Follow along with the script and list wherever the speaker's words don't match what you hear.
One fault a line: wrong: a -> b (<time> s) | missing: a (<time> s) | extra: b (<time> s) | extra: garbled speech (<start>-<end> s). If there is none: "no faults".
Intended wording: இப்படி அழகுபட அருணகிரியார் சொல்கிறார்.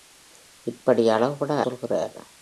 missing: அருணகிரியார் (1.5 s)